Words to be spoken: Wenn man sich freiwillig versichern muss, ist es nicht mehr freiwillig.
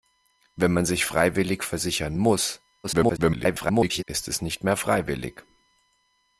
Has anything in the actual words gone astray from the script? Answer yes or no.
yes